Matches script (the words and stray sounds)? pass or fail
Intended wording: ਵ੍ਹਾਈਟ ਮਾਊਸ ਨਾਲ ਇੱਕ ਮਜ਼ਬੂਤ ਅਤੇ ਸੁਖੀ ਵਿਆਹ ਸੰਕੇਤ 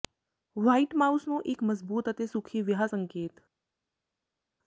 fail